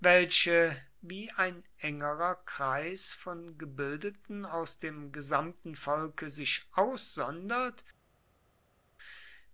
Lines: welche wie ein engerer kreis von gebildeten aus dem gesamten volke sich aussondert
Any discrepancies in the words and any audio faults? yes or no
no